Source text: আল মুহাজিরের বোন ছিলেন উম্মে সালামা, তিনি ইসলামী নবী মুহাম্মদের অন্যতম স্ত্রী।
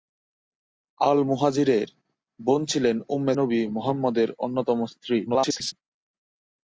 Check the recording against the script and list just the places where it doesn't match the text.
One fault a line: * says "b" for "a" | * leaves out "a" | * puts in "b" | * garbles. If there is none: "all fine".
* leaves out "সালামা তিনি ইসলামী"
* garbles